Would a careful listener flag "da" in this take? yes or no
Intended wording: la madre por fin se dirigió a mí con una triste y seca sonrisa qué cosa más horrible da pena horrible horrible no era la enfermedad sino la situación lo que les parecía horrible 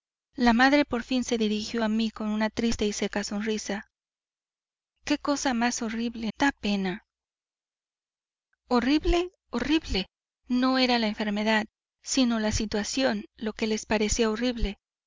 no